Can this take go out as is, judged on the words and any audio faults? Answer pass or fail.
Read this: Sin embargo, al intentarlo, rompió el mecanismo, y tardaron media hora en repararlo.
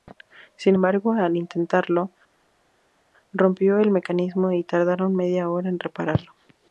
pass